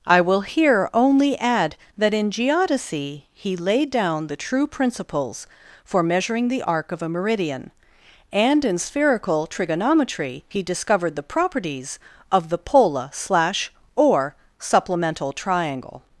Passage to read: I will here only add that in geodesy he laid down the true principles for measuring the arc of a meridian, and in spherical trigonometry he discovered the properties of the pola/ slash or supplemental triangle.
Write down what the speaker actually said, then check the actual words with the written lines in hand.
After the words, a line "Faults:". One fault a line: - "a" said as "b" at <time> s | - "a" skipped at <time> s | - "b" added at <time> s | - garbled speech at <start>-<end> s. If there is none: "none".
I will here only add that in geodesy he laid down the true principles for measuring the arc of a meridian, and in spherical trigonometry he discovered the properties of the pola/ slash or supplemental triangle.
Faults:
none